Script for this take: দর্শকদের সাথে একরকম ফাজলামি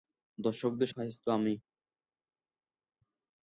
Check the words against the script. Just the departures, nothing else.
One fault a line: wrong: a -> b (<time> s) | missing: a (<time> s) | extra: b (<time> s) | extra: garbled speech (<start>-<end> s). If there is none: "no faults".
missing: সাথে একরকম (0.9 s)